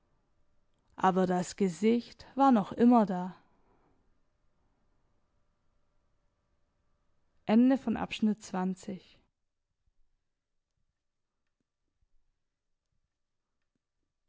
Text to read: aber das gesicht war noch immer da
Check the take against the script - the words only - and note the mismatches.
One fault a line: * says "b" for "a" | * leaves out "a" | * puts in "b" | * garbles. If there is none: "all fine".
all fine